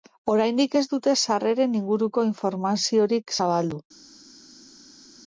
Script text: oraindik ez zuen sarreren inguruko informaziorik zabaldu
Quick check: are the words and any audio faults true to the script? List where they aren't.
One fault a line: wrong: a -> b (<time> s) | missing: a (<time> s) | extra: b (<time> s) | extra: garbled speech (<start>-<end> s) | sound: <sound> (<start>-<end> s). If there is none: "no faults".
wrong: zuen -> dute (0.9 s)